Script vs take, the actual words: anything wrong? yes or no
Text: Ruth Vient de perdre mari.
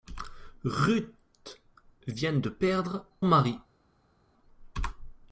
no